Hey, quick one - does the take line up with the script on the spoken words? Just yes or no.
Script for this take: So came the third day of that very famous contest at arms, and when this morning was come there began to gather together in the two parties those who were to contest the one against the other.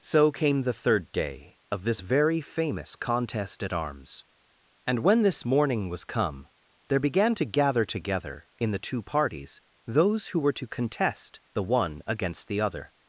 no